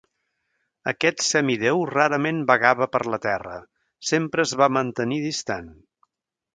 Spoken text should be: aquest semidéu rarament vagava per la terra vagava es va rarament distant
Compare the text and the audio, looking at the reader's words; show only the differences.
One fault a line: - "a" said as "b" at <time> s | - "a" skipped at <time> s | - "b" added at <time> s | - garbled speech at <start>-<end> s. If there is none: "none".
- "vagava" said as "sempre" at 4.1 s
- "rarament" said as "mantenir" at 4.8 s